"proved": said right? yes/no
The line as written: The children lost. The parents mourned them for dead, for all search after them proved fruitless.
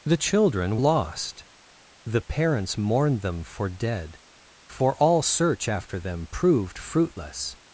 yes